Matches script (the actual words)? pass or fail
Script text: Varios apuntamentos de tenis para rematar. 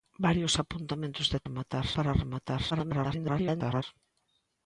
fail